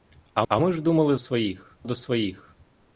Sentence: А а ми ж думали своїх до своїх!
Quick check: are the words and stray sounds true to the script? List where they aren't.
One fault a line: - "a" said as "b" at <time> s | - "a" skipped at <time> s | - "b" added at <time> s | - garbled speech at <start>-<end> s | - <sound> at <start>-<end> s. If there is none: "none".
none